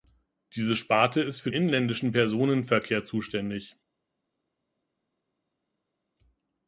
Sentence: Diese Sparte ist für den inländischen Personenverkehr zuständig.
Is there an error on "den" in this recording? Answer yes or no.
yes